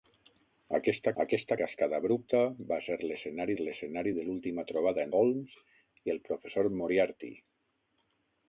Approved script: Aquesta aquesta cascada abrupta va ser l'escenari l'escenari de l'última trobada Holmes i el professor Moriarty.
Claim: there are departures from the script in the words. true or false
false